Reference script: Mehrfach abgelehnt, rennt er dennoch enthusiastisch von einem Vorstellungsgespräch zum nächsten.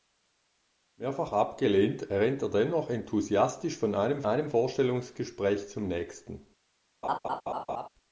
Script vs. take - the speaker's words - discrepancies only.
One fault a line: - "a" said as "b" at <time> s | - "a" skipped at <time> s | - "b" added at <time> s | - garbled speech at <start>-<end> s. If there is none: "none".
- "einem" added at 4.2 s